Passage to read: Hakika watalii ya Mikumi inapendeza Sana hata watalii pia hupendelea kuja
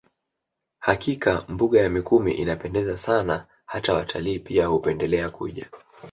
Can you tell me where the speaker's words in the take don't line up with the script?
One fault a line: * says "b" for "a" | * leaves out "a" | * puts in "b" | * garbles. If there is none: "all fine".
* says "mbuga" for "watalii"